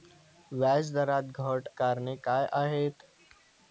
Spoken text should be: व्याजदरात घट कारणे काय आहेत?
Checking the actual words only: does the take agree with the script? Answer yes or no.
yes